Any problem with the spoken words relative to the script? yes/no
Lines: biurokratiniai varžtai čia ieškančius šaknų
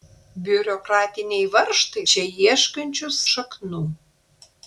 no